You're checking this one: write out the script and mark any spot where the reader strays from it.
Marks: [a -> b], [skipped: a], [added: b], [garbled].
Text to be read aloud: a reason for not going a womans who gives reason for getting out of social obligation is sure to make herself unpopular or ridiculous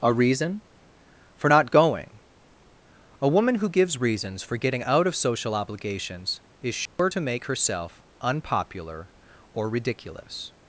a reason for not going a [womans -> woman] who gives [reason -> reasons] for getting out of social [obligation -> obligations] is sure to make herself unpopular or ridiculous